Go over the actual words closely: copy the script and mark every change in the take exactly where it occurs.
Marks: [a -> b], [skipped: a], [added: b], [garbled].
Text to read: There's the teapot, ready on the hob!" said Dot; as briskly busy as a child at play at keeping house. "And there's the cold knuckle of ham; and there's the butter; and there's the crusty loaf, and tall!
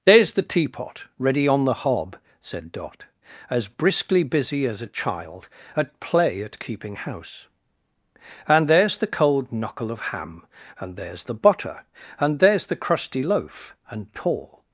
There's the teapot, ready on the hob!" said Dot; as briskly busy as a child at play at keeping house. "And there's the cold knuckle of ham; and there's the butter; and there's the crusty loaf, and tall!